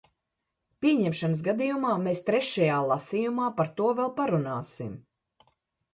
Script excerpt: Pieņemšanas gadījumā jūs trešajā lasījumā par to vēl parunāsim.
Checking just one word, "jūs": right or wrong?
wrong